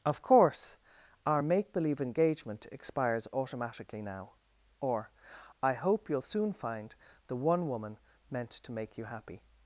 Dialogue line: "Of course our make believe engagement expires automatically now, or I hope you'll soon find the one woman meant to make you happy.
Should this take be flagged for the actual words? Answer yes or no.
no